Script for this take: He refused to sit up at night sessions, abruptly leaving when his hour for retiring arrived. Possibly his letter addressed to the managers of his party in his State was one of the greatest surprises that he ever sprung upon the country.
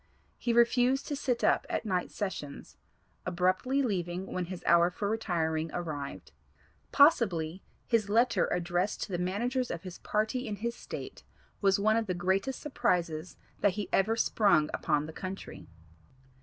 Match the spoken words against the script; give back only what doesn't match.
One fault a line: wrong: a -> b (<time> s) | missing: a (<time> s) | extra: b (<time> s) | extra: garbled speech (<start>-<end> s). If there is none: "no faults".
no faults